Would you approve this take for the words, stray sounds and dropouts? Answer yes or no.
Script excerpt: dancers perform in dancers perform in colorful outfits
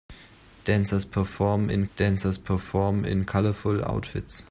yes